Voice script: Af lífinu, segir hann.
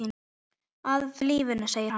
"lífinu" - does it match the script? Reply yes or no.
yes